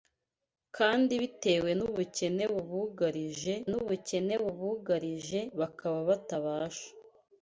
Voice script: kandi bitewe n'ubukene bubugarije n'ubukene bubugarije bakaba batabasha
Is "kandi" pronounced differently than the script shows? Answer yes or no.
no